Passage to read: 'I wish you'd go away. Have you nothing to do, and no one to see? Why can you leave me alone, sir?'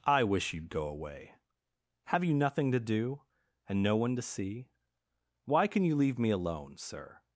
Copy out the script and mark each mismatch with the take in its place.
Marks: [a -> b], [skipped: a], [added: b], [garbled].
'I wish you'd go away. Have you nothing to do, and no one to see? Why can you leave me alone, sir?'